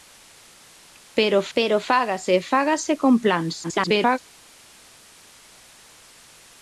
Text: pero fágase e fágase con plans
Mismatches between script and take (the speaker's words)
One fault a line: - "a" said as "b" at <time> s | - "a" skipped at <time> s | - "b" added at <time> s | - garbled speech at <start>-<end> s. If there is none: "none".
- "pero" added at 1.6 s
- garbled speech at 3.6-4.2 s